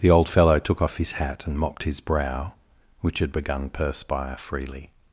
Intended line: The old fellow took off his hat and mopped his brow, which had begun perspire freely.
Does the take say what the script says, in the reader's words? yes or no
yes